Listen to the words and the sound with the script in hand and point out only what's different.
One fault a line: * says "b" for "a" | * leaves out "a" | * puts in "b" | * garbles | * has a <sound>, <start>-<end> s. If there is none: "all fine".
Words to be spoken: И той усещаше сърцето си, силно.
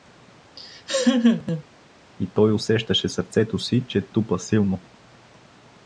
* has a laugh, 0.6-1.6 s
* puts in "че тупа"